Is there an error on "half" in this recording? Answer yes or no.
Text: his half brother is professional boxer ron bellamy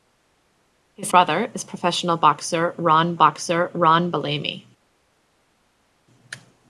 yes